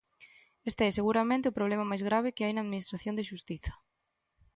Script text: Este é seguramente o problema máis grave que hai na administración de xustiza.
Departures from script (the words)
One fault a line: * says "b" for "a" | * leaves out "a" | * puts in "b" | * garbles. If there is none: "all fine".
all fine